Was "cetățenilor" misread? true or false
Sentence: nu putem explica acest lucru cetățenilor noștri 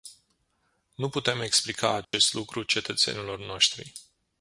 false